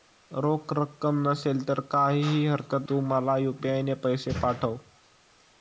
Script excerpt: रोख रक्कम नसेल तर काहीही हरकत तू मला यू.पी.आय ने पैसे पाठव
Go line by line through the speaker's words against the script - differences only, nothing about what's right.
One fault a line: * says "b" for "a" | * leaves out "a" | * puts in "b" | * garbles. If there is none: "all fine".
all fine